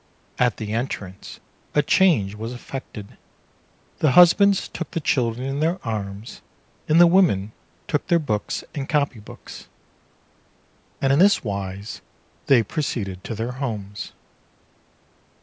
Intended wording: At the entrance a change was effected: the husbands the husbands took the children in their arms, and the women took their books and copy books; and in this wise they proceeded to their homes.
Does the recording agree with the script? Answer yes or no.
no